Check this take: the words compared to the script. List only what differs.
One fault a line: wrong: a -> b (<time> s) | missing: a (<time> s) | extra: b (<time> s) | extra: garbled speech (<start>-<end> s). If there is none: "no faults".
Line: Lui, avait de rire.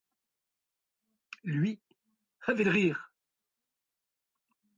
no faults